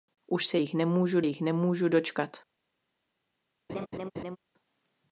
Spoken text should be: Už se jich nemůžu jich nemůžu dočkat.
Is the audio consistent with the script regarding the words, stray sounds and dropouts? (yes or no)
no